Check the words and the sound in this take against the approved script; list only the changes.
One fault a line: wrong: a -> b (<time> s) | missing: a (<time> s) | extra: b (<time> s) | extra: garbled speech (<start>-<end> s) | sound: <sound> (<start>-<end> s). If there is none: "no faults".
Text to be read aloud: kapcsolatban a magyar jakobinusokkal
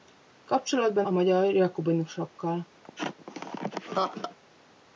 sound: laugh (2.8-4.4 s)